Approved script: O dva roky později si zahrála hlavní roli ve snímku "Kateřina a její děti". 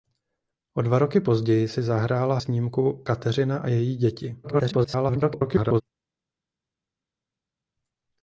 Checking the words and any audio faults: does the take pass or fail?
fail